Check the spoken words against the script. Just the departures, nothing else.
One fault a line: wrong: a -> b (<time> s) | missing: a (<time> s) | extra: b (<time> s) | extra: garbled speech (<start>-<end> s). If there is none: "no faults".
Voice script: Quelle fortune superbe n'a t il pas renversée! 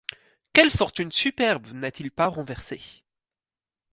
no faults